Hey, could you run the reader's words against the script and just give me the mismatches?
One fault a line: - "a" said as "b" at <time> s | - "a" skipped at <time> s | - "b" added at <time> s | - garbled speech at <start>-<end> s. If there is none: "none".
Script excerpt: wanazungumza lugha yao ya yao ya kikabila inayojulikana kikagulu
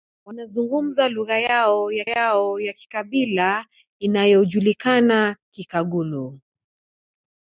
none